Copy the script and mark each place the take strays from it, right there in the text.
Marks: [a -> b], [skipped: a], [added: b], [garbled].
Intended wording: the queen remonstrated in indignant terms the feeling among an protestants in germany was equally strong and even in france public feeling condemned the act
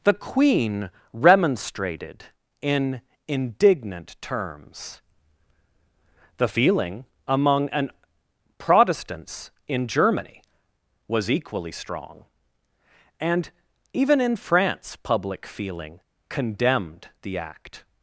the queen remonstrated in indignant terms the feeling among an protestants in germany was equally strong and even in france public feeling condemned the act